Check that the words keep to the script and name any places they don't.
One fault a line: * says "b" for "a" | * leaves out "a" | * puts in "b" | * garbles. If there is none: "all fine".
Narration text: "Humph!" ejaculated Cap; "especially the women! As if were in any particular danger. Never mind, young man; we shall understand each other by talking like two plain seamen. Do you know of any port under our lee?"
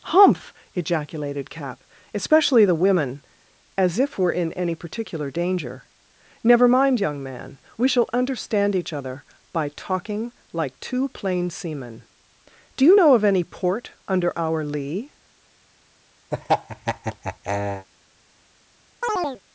all fine